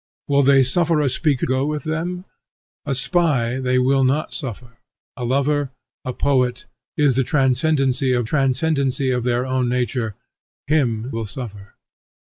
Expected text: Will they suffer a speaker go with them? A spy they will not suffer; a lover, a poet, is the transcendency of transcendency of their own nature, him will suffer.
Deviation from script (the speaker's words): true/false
false